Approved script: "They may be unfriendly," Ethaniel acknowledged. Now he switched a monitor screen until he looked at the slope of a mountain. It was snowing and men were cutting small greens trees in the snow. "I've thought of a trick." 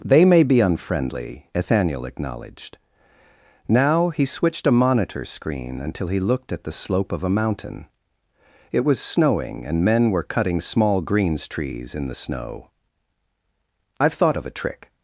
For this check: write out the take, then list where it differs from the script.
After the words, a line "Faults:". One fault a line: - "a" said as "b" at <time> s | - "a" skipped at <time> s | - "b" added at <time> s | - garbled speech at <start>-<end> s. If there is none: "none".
"They may be unfriendly," Ethaniel acknowledged. Now he switched a monitor screen until he looked at the slope of a mountain. It was snowing and men were cutting small greens trees in the snow. "I've thought of a trick."
Faults:
none